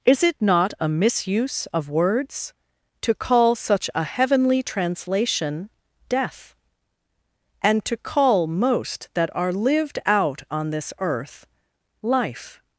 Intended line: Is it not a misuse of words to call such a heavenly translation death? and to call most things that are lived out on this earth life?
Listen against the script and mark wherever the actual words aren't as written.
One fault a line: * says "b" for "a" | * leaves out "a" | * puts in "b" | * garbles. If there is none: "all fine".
* leaves out "things"